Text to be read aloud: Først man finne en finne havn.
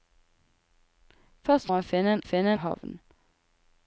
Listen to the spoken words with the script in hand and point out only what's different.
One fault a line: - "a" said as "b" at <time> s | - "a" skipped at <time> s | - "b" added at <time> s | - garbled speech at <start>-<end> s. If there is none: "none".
none